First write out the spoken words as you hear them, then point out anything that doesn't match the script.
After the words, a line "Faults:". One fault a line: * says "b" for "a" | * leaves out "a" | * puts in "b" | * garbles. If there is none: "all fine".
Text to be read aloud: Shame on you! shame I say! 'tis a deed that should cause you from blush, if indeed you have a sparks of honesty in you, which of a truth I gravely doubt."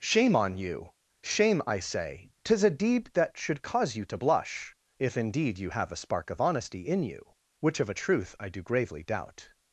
Shame on you! shame I say! 'tis a deed that should cause you to blush, if indeed you have a spark of honesty in you, which of a truth I do gravely doubt."
Faults:
* says "to" for "from"
* says "spark" for "sparks"
* puts in "do"